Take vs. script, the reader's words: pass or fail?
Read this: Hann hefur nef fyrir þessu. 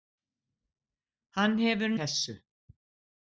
fail